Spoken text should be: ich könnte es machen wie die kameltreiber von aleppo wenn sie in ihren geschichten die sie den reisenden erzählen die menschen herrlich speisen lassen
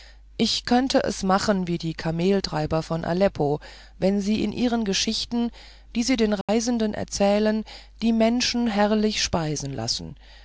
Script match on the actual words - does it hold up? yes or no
yes